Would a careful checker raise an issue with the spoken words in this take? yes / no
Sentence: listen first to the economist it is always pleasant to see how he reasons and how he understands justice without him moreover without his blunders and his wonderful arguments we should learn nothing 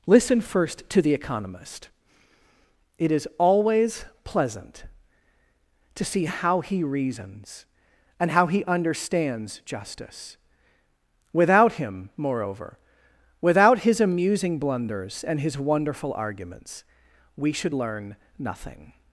yes